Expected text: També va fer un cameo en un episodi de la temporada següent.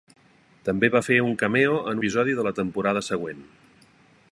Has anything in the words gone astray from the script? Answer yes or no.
yes